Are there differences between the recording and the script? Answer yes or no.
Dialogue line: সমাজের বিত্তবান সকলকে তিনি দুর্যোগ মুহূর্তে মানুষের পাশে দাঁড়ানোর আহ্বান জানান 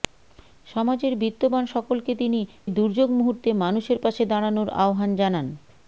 no